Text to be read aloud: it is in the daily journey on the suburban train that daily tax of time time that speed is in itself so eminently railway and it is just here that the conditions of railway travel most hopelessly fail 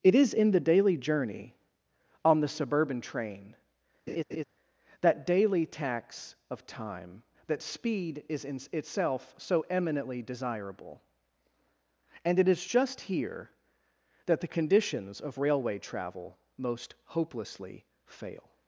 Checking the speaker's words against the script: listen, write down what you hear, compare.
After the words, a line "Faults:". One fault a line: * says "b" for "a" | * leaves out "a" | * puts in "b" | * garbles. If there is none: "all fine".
it is in the daily journey on the suburban train that daily tax of time that speed is in itself so eminently desirable and it is just here that the conditions of railway travel most hopelessly fail
Faults:
* leaves out "time"
* says "desirable" for "railway"